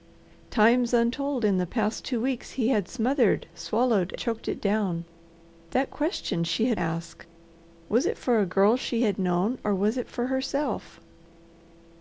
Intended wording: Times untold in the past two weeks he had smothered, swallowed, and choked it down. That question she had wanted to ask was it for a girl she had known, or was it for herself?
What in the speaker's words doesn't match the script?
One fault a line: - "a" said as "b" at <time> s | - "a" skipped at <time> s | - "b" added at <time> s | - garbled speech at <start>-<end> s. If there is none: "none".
- "and" skipped at 4.2 s
- "wanted to" skipped at 6.8 s